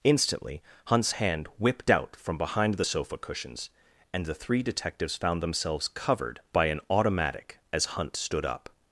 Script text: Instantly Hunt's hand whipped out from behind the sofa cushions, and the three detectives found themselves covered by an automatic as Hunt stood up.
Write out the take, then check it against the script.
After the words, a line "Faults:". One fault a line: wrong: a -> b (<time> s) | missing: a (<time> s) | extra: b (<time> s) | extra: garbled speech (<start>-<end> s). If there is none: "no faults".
Instantly Hunt's hand whipped out from behind the sofa cushions, and the three detectives found themselves covered by an automatic as Hunt stood up.
Faults:
no faults